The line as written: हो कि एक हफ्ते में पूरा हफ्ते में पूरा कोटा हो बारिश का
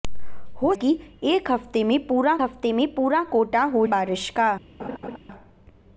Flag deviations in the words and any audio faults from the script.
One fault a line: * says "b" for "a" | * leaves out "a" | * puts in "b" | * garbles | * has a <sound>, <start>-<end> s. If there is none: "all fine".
* has a laugh, 4.8-5.2 s